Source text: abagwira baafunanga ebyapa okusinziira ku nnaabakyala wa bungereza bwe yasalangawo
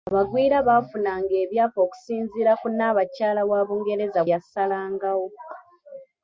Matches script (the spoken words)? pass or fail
fail